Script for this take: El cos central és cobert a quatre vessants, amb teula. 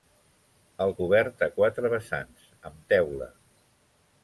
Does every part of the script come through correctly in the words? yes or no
no